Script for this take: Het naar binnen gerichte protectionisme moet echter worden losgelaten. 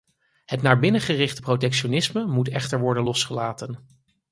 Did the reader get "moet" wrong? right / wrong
right